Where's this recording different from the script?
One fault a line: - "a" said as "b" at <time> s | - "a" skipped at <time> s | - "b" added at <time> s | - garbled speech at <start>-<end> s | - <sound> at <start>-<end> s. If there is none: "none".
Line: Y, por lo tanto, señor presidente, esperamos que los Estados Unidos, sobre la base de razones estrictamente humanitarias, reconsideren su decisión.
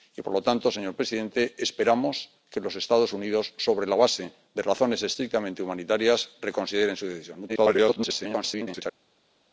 - garbled speech at 7.5-8.8 s